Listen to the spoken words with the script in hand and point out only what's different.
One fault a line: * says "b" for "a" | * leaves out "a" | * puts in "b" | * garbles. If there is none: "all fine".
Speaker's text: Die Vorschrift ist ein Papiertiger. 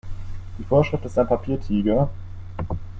all fine